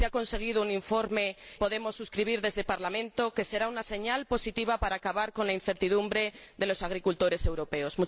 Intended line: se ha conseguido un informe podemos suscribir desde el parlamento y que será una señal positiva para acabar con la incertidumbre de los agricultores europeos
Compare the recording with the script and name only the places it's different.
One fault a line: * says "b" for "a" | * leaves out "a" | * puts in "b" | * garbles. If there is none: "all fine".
all fine